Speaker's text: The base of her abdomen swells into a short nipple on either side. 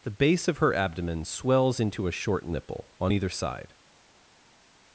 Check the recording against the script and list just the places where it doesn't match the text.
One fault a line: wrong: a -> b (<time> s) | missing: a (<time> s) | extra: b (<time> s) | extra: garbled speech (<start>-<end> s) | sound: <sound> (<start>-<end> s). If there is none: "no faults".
no faults